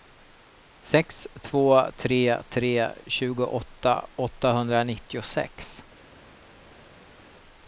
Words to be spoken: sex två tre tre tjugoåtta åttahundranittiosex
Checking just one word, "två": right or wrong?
right